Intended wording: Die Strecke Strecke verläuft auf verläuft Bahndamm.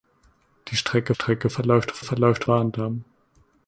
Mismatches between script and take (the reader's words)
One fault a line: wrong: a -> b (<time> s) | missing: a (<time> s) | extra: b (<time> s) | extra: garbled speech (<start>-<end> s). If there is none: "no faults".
no faults